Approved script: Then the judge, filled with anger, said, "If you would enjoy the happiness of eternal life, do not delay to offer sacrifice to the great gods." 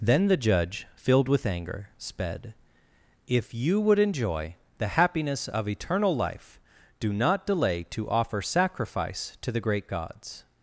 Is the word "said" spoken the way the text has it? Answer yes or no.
no